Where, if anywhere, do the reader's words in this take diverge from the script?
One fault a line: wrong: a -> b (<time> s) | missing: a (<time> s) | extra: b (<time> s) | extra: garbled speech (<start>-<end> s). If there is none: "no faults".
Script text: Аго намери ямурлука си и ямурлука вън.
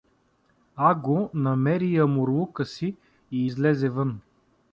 wrong: ямурлука -> излезе (3.4 s)